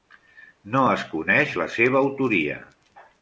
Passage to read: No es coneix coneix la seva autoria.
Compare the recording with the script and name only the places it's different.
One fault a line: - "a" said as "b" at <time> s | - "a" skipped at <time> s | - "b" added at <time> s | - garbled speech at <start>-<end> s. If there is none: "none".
- "coneix" skipped at 1.5 s